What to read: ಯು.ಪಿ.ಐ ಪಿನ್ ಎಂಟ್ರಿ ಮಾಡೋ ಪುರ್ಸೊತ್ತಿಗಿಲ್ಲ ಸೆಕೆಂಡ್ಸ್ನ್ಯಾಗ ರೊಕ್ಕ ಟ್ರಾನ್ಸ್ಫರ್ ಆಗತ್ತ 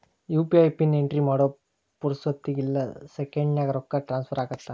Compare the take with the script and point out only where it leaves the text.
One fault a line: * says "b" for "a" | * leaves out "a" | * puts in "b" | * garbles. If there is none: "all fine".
all fine